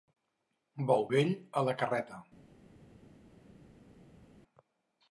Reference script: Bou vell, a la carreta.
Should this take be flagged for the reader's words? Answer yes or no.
no